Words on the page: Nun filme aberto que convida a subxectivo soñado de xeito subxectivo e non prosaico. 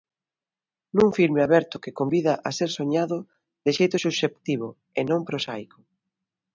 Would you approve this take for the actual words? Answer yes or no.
no